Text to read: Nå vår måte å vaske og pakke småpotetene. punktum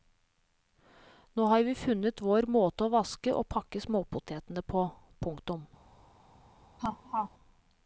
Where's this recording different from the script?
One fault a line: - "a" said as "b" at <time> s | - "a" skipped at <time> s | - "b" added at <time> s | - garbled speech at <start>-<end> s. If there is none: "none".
- "har vi funnet" added at 1.4 s
- "på" added at 4.8 s